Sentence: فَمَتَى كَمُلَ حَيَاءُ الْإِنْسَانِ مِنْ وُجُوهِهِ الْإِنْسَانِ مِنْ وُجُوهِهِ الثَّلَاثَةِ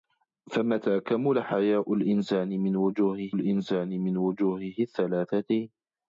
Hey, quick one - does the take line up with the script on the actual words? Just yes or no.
yes